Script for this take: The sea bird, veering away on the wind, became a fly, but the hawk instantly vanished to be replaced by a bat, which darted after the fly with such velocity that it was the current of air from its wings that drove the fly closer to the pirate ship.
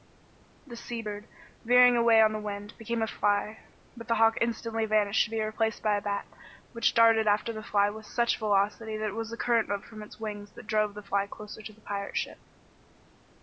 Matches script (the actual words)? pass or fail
fail